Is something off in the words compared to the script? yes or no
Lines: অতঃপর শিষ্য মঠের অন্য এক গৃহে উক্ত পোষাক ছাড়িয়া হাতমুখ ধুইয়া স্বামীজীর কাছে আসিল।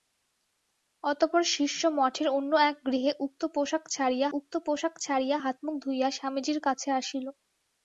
yes